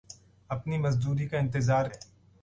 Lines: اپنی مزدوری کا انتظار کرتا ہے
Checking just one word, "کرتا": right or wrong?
wrong